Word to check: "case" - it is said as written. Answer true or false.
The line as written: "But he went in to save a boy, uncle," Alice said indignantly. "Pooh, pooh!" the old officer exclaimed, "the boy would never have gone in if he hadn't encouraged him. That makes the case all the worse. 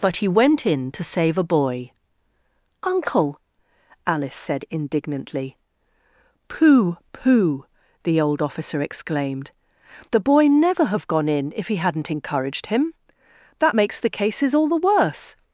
false